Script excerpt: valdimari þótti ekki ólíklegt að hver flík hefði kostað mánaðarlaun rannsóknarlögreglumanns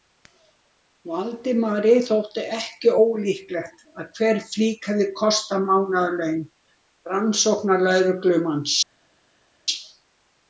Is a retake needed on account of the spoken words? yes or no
no